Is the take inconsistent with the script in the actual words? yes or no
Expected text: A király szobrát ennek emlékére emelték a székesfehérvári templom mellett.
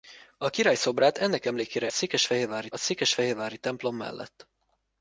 yes